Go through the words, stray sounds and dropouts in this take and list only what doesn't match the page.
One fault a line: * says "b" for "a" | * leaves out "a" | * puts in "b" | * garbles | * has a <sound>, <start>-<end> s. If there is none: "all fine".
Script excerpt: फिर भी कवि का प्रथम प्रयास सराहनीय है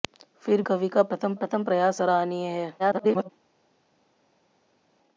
* leaves out "भी"
* puts in "प्रथम"
* garbles